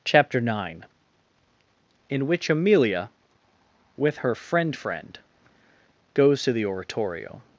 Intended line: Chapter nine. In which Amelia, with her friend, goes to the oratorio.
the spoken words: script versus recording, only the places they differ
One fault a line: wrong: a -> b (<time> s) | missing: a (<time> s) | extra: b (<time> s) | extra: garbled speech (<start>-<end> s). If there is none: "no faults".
extra: friend (4.7 s)